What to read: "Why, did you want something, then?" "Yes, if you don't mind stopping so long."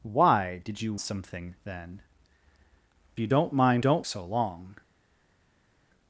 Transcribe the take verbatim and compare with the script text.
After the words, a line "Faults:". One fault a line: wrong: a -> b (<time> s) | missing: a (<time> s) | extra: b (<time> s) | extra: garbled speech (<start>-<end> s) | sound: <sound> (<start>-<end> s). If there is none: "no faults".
"Why, did you something, then?" "You don't mind don't so long."
Faults:
missing: want (0.9 s)
missing: Yes if (2.0 s)
wrong: stopping -> don't (3.8 s)